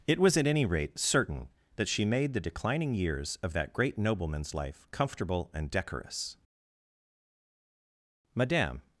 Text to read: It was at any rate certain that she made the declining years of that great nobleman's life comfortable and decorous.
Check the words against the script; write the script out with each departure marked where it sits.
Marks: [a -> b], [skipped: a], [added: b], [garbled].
It was at any rate certain that she made the declining years of that great nobleman's life comfortable and decorous. [added: Madame]